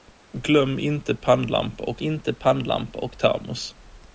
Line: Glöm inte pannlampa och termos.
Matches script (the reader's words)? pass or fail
fail